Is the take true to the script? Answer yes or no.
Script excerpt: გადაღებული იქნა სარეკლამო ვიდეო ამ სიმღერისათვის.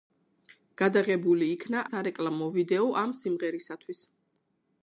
yes